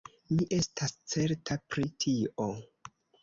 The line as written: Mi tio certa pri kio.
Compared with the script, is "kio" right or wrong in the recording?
wrong